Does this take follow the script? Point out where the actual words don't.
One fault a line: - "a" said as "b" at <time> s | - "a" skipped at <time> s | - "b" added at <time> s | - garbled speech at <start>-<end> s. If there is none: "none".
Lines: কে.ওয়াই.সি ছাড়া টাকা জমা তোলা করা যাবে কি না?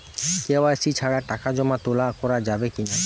none